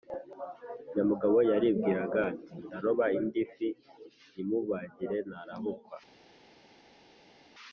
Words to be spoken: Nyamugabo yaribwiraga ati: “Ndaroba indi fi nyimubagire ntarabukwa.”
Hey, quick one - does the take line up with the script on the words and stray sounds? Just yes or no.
yes